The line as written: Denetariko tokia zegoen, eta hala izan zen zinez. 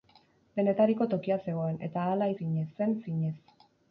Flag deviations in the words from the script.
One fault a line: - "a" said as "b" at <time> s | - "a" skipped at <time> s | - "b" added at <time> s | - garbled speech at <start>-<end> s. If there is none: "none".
- "izan" said as "zinez" at 2.4 s